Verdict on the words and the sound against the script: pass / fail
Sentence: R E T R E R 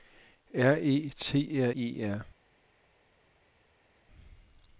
pass